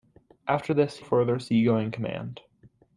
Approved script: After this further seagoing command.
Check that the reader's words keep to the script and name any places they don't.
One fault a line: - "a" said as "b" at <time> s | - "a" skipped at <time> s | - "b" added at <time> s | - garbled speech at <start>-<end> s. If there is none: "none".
none